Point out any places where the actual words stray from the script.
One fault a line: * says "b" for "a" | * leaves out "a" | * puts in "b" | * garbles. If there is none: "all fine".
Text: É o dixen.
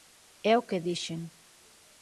* puts in "que"